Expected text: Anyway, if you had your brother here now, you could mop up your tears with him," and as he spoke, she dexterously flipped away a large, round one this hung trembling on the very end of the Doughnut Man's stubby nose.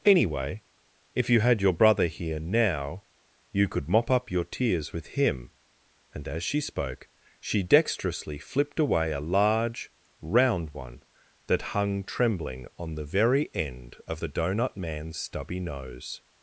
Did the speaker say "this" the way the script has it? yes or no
no